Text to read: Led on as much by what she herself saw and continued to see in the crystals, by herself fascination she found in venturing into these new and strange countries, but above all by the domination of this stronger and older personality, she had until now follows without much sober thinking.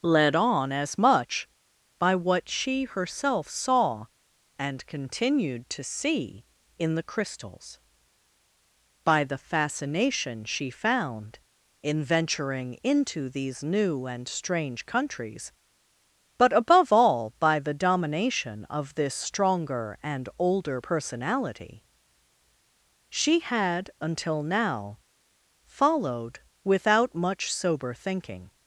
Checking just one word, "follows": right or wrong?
wrong